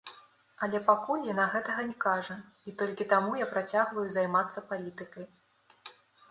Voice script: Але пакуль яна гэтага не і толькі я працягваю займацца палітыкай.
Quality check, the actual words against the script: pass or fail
fail